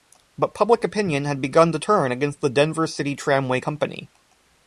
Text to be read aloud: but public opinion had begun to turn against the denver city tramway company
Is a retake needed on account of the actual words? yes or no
no